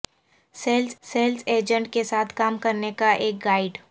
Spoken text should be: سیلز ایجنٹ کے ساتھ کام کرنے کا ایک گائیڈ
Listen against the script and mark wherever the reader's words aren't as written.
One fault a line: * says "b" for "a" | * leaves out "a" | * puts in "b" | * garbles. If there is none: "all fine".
* puts in "سیلز"